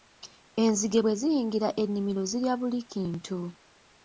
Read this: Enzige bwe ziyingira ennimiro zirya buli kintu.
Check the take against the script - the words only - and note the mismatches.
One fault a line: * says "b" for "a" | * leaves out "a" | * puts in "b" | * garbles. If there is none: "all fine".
all fine